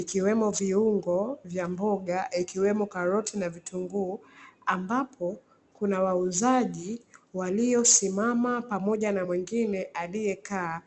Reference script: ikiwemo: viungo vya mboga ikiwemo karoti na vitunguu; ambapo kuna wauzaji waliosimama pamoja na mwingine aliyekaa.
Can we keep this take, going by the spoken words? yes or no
yes